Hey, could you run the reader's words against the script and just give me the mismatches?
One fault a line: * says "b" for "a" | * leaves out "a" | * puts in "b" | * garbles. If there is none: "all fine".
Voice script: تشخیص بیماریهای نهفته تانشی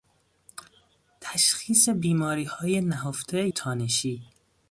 all fine